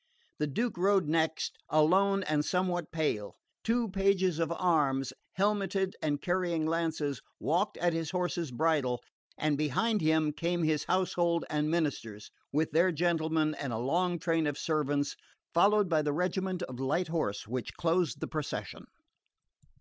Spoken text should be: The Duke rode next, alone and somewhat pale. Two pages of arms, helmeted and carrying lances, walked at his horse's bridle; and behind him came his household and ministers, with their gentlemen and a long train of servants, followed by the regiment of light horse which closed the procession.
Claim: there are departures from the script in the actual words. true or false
false